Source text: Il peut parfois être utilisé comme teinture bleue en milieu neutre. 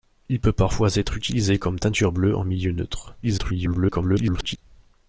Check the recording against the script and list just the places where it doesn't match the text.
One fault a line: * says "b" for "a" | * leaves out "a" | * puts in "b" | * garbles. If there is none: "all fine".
* garbles